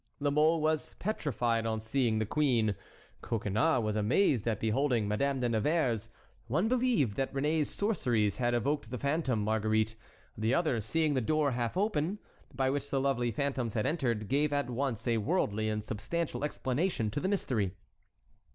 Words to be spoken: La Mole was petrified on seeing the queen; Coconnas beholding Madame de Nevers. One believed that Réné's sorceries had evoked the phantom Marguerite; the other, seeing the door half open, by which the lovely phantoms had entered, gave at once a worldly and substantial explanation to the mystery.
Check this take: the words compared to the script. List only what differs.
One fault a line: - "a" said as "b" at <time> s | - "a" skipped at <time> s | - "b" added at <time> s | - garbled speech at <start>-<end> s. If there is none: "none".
- "was amazed at" added at 3.8 s